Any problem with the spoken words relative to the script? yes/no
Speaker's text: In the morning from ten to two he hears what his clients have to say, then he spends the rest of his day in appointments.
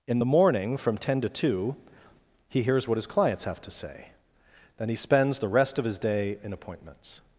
no